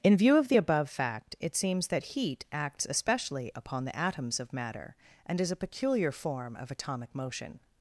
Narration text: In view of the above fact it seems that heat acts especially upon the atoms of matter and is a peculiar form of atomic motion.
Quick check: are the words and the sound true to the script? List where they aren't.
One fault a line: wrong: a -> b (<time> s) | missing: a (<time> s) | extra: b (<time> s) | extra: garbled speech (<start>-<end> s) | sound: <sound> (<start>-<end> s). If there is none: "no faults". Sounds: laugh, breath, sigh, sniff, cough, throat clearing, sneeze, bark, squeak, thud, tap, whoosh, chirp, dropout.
no faults